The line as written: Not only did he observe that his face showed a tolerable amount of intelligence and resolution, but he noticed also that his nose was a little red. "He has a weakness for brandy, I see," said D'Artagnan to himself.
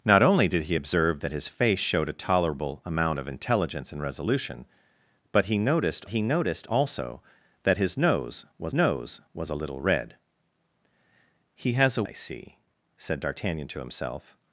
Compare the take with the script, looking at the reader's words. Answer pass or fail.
fail